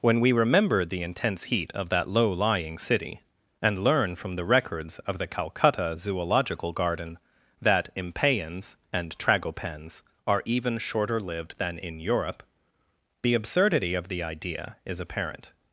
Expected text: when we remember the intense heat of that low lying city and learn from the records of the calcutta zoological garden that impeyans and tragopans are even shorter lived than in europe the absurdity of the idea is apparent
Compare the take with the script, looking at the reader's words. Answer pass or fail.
pass